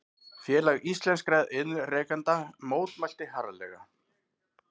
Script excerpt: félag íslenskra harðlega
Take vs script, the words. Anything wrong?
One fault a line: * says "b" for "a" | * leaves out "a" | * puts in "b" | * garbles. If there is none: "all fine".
* puts in "iðnrekenda mótmælti"